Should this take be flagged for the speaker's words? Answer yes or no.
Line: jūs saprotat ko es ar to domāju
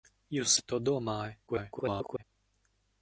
yes